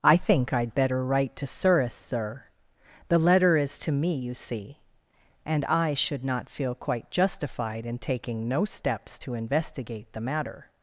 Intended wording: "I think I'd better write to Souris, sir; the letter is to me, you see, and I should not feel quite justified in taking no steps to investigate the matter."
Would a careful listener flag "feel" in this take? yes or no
no